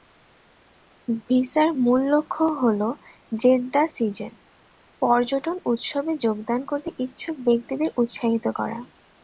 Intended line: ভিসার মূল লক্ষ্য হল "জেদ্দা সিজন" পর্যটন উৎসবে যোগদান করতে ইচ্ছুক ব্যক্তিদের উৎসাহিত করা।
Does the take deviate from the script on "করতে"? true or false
false